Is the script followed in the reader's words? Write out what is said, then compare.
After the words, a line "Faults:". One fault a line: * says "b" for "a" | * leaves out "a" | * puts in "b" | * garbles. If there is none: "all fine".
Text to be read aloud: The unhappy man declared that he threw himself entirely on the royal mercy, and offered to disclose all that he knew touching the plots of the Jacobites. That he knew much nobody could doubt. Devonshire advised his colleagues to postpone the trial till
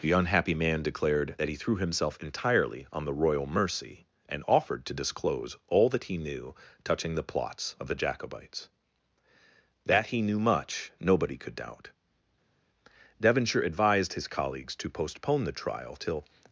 The unhappy man declared that he threw himself entirely on the royal mercy, and offered to disclose all that he knew touching the plots of the Jacobites. That he knew much nobody could doubt. Devonshire advised his colleagues to postpone the trial till
Faults:
all fine